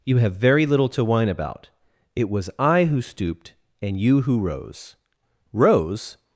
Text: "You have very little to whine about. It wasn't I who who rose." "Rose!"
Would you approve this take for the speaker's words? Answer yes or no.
no